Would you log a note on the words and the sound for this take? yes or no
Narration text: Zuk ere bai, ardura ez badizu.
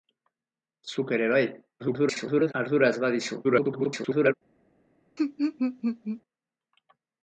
yes